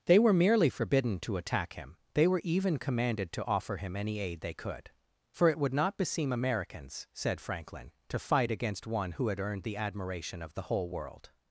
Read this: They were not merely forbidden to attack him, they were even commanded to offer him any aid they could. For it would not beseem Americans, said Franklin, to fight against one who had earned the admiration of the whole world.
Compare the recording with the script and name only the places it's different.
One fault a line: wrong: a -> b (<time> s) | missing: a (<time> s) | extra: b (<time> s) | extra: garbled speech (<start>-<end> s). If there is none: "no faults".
missing: not (0.3 s)